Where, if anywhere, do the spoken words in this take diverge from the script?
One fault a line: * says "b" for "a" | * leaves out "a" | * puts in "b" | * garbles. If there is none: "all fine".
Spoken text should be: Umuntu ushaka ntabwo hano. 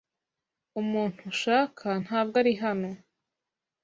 * puts in "ari"